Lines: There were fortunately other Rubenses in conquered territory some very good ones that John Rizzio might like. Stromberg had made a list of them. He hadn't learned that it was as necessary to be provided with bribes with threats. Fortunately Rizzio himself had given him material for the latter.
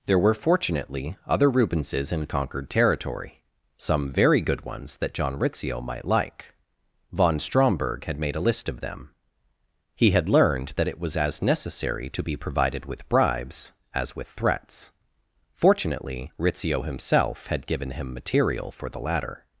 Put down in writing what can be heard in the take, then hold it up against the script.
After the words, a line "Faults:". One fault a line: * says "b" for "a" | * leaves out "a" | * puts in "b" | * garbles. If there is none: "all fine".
There were fortunately other Rubenses in conquered territory some very good ones that John Rizzio might like. Von Stromberg had made a list of them. He had learned that it was as necessary to be provided with bribes as with threats. Fortunately Rizzio himself had given him material for the latter.
Faults:
* puts in "Von"
* says "had" for "hadn't"
* puts in "as"